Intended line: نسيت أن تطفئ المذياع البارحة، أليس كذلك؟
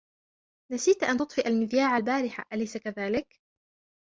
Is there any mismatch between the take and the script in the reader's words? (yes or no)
no